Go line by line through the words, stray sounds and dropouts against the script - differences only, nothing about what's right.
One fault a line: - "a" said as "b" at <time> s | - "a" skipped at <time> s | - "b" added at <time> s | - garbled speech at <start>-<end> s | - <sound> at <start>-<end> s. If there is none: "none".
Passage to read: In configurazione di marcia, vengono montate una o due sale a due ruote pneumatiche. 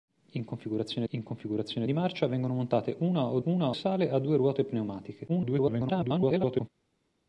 - "in configurazione" added at 1.1 s
- "due" said as "una" at 3.4 s
- garbled speech at 5.3-6.7 s